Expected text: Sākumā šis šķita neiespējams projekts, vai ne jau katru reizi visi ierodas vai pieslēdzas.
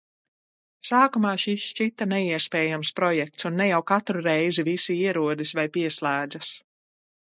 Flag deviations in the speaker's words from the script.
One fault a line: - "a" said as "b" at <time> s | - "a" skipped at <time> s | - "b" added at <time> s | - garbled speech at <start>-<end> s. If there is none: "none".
- "vai" said as "un" at 3.5 s